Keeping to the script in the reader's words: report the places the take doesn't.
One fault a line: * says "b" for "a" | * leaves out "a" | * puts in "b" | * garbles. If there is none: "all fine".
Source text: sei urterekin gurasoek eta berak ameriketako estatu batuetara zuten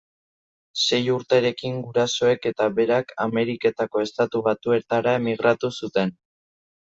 * puts in "emigratu"